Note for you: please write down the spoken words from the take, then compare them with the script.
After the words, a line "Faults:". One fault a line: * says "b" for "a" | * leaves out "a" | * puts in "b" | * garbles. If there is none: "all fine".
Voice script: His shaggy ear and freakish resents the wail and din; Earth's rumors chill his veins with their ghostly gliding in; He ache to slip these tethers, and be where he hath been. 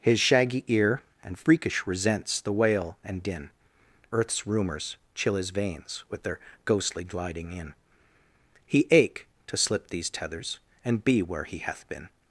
His shaggy ear and freakish resents the wail and din; Earth's rumors chill his veins with their ghostly gliding in; He ache to slip these tethers, and be where he hath been.
Faults:
all fine